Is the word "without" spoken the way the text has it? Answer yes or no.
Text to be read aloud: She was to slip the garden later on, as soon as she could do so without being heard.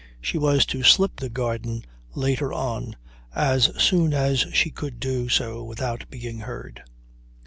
yes